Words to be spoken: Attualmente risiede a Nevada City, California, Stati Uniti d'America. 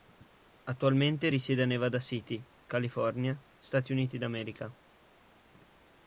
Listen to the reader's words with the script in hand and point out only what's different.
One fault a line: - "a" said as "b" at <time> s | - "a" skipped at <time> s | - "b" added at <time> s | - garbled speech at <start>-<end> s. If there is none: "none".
none